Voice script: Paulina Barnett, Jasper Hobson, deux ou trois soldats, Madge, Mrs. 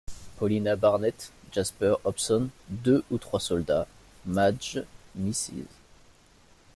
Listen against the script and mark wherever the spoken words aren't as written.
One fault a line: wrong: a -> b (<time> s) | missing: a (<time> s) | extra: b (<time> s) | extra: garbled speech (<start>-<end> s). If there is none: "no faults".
no faults